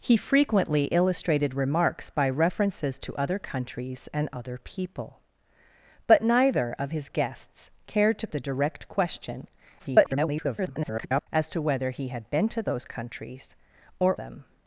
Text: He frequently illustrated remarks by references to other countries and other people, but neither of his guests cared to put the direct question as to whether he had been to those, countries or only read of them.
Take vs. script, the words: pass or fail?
fail